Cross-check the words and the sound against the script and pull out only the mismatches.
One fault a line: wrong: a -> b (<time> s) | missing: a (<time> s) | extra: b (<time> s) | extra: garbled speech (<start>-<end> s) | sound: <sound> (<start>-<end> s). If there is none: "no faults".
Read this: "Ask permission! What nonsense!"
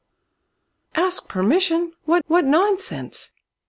extra: what (2.3 s)